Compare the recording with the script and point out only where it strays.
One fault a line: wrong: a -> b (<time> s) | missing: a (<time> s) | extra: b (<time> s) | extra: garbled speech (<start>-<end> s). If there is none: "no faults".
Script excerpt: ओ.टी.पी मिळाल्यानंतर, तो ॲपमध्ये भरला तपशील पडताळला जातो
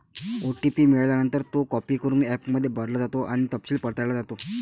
extra: कॉपी करून (1.7 s)
extra: जातो आणि (3.0 s)